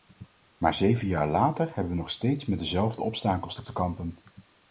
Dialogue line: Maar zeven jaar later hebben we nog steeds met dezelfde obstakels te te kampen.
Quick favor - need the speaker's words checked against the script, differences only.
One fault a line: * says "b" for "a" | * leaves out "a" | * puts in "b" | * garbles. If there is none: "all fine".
all fine